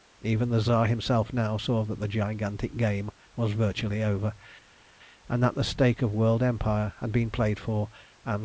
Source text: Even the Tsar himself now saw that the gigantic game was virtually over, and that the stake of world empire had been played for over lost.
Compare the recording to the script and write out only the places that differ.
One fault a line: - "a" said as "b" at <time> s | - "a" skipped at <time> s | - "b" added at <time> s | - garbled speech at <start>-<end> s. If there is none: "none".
- "over" said as "and" at 8.2 s